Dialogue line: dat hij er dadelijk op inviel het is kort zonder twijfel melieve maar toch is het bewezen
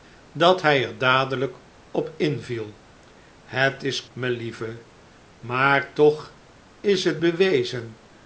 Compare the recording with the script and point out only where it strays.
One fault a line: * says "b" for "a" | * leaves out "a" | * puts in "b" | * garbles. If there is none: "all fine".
* leaves out "kort zonder twijfel"